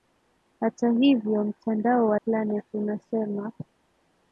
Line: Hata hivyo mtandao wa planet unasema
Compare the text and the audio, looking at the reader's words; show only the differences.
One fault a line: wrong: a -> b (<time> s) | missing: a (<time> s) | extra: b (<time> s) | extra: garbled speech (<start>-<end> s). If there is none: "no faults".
no faults